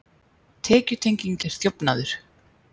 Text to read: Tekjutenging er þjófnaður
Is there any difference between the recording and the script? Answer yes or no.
no